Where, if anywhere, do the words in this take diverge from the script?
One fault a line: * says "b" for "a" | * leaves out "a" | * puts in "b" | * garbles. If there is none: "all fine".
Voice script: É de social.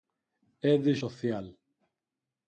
all fine